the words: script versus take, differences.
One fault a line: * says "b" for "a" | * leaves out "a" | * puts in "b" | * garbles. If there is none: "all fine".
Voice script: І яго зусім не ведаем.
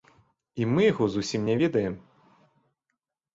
* puts in "мы"